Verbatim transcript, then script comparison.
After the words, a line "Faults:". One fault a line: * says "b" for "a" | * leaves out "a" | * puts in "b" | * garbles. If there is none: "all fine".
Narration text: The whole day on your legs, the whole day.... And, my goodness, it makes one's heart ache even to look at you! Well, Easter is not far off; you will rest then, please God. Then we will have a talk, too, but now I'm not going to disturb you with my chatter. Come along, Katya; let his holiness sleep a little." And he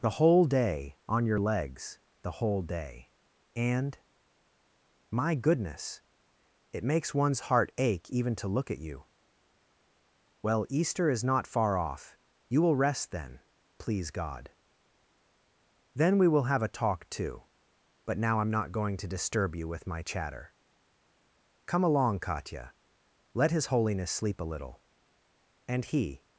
The whole day on your legs, the whole day.... And, my goodness, it makes one's heart ache even to look at you! Well, Easter is not far off; you will rest then, please God. Then we will have a talk, too, but now I'm not going to disturb you with my chatter. Come along, Katya; let his holiness sleep a little." And he
Faults:
all fine